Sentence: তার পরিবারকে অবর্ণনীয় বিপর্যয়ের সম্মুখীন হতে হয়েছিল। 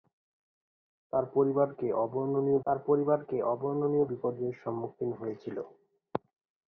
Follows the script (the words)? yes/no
no